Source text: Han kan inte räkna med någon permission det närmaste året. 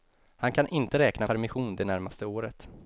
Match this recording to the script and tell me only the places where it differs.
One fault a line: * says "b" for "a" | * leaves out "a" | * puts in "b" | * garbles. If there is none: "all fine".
* leaves out "med någon"